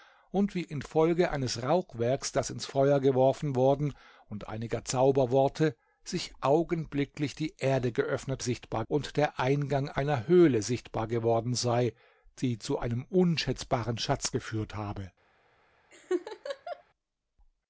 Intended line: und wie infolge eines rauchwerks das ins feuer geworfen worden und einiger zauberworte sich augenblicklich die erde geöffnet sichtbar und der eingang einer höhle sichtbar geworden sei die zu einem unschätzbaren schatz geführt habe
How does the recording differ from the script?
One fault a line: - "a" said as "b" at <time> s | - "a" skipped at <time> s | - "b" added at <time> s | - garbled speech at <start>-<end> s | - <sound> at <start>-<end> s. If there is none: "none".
- laugh at 15.9-16.8 s